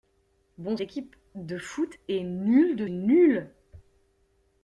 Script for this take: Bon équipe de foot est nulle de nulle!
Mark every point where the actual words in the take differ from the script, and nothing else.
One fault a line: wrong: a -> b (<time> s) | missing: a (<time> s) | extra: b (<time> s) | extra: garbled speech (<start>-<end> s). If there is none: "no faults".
no faults